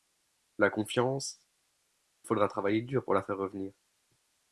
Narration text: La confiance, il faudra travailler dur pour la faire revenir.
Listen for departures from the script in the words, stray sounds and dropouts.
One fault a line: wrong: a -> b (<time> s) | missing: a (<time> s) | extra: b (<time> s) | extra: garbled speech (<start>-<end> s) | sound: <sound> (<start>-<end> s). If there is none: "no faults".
missing: il (1.4 s)